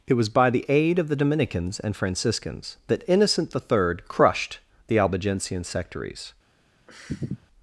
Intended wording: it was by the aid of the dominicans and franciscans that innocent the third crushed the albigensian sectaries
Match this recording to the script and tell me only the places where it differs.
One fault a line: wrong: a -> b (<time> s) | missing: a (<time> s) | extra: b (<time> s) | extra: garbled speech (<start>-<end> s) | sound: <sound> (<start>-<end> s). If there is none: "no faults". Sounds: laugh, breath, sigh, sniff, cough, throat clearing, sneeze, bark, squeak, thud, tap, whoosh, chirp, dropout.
sound: sniff (6.9-7.5 s)